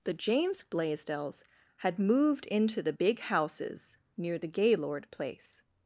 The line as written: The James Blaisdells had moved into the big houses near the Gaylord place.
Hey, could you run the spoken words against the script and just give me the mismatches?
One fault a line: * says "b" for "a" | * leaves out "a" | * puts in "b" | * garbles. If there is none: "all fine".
all fine